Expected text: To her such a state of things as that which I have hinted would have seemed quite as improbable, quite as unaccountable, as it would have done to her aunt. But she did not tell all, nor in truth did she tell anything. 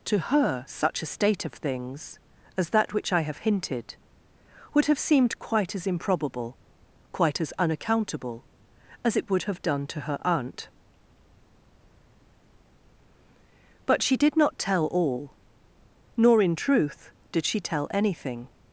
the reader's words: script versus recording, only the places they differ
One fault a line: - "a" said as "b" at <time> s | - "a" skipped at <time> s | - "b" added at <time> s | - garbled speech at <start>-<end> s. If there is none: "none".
none